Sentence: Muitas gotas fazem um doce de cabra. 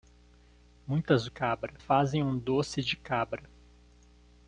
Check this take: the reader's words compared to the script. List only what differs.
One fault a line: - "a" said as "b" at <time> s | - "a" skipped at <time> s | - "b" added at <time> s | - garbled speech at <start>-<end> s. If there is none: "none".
- "gotas" said as "cabra" at 1.3 s